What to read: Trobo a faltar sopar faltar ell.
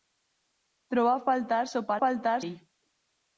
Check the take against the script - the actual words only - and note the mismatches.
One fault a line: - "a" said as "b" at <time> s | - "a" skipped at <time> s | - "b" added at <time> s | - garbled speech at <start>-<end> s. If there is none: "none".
none